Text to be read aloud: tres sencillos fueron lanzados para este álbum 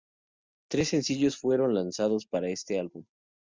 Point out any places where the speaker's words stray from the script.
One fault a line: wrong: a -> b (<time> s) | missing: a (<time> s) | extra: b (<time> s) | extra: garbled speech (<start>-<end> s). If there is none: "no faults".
no faults